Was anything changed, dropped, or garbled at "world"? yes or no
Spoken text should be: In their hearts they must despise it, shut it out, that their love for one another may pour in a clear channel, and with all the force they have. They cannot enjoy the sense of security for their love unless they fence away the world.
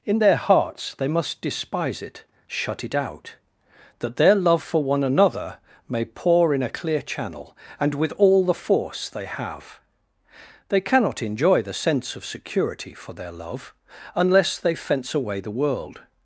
no